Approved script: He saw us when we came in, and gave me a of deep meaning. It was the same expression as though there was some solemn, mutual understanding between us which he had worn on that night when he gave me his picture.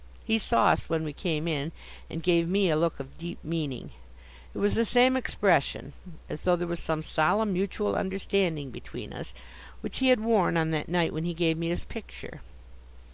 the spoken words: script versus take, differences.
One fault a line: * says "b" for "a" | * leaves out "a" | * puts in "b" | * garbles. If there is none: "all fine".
* puts in "look"